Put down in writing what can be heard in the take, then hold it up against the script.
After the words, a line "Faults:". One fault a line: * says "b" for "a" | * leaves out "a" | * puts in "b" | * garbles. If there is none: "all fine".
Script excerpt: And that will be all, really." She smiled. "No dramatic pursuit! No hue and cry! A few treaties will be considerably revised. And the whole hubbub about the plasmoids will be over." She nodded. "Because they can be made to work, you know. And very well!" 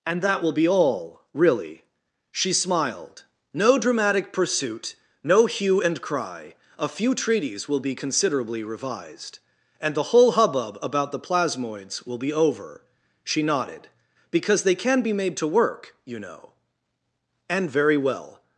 And that will be all, really." She smiled. "No dramatic pursuit! No hue and cry! A few treaties will be considerably revised. And the whole hubbub about the plasmoids will be over." She nodded. "Because they can be made to work, you know. And very well!"
Faults:
all fine